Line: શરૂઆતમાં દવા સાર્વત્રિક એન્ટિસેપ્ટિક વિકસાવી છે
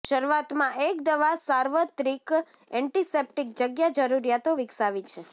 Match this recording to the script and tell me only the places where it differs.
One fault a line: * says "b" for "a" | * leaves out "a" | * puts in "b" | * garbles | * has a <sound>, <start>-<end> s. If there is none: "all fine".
* puts in "એક"
* puts in "જગ્યા જરૂરિયાતો"